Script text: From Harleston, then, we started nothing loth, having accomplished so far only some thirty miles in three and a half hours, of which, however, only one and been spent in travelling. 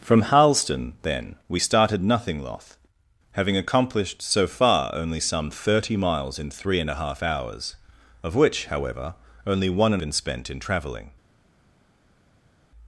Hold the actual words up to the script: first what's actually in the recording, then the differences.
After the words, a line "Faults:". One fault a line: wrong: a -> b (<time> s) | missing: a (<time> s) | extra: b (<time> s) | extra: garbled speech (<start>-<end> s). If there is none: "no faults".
From Harleston, then, we started nothing loth, having accomplished so far only some thirty miles in three and a half hours, of which, however, only one and been spent in travelling.
Faults:
no faults